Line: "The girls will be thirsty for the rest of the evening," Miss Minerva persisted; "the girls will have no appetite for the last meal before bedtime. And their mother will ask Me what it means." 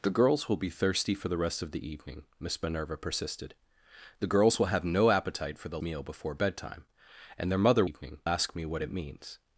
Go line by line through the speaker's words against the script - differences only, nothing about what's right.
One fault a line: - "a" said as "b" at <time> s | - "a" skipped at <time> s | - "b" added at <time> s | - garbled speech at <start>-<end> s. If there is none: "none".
- "last" skipped at 5.8 s
- "will" said as "evening" at 7.8 s